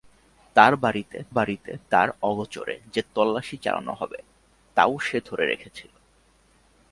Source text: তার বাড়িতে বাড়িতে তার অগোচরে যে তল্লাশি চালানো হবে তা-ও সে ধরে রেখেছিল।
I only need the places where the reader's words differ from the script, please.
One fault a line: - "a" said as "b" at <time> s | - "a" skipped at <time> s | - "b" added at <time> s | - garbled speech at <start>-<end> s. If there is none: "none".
none